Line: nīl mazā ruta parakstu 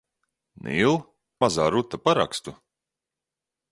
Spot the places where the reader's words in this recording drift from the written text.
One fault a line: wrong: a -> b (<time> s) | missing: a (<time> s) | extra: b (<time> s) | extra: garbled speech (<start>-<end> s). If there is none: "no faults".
no faults